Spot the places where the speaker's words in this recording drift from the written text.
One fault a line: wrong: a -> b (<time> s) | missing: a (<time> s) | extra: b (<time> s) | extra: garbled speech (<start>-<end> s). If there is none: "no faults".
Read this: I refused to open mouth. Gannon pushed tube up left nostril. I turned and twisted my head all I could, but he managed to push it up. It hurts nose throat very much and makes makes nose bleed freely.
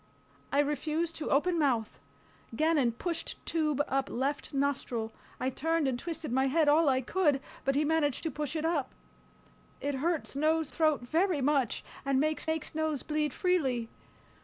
no faults